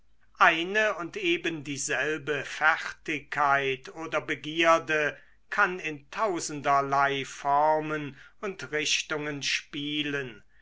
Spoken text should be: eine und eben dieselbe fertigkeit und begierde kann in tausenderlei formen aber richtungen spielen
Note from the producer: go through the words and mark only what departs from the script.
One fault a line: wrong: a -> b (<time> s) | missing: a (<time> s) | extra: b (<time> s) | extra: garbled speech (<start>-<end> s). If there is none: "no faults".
wrong: und -> oder (3.9 s)
wrong: aber -> und (8.4 s)